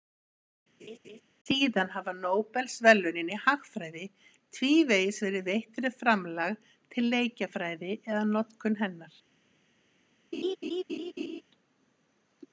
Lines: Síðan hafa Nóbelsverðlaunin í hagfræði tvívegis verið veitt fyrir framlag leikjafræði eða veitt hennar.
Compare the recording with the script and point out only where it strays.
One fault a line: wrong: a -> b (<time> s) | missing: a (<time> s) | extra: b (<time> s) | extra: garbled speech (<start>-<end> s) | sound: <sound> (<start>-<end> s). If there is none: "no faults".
sound: laugh (0.8-1.2 s)
extra: til (6.9 s)
wrong: veitt -> notkun (8.3 s)
sound: laugh (10.3-11.4 s)